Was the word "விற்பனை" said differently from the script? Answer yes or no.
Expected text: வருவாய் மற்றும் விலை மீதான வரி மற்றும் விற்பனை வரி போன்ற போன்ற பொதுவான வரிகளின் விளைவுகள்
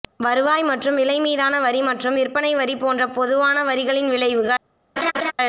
no